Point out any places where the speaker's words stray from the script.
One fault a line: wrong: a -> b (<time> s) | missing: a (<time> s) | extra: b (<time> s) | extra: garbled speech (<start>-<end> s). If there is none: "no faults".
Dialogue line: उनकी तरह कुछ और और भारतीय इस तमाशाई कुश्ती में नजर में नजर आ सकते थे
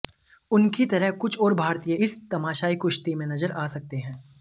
missing: और (1.5 s)
missing: में नजर (3.5 s)
wrong: थे -> हैं (4.0 s)